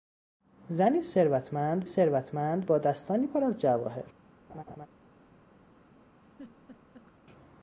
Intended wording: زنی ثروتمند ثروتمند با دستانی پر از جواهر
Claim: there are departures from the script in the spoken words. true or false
false